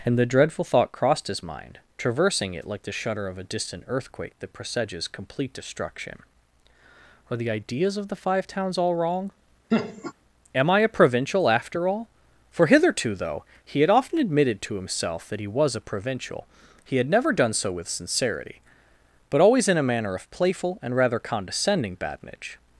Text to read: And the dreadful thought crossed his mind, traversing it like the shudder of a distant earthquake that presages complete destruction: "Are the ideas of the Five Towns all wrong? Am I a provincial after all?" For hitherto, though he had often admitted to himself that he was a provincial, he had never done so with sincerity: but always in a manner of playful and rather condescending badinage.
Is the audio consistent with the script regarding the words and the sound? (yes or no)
no